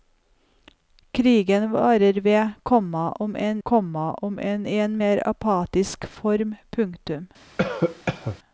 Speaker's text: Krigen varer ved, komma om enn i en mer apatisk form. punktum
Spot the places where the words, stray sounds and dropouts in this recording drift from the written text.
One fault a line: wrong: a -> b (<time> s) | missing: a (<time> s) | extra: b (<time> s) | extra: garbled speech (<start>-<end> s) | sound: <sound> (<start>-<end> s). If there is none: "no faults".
extra: komma om enn (3.6 s)
sound: cough (7.6-8.4 s)